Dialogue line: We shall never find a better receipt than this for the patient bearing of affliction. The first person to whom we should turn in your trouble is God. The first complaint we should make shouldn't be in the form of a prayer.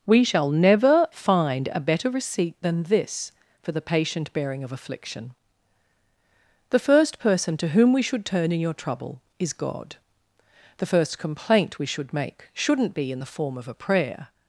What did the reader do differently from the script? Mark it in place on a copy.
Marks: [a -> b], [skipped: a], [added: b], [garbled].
We shall never find a better receipt than this for the patient bearing of affliction. The first person to whom we should turn in your trouble is God. The first complaint we should make shouldn't be in the form of a prayer.